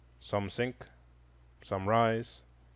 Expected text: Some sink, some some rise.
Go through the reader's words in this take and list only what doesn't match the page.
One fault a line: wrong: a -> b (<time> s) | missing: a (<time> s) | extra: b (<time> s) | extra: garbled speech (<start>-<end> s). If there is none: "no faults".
missing: some (1.9 s)